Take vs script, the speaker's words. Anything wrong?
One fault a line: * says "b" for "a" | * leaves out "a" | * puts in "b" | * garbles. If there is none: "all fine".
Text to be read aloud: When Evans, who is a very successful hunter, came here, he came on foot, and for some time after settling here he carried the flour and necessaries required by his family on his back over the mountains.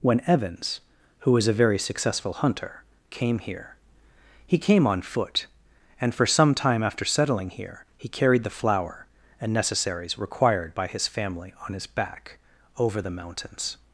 * says "was" for "is"